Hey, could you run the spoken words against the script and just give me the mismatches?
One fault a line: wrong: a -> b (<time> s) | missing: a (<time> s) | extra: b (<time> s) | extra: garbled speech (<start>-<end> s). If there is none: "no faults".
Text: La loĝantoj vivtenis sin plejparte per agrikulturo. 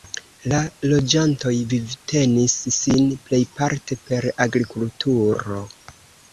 no faults